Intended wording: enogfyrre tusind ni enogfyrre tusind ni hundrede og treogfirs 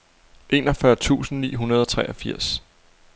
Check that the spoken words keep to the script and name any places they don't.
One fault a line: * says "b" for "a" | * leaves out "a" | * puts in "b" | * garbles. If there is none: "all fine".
* leaves out "enogfyrre tusind ni"